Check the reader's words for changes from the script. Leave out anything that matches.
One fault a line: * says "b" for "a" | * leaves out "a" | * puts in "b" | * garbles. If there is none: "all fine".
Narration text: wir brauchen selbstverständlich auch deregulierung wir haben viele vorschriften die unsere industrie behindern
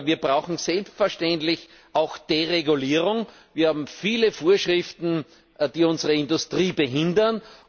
all fine